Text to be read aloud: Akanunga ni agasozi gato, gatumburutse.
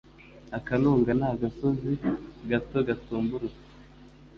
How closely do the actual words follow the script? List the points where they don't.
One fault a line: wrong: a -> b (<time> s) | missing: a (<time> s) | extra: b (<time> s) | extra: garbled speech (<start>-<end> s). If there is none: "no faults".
no faults